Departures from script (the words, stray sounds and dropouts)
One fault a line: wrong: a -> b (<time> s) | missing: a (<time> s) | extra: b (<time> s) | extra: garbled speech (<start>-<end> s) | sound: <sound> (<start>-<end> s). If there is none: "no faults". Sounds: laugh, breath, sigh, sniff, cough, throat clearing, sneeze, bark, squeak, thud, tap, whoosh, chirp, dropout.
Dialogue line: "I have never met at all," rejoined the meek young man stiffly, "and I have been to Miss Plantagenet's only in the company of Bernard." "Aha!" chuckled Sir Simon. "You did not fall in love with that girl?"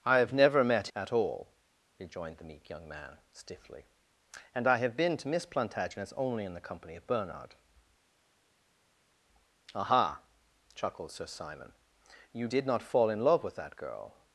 no faults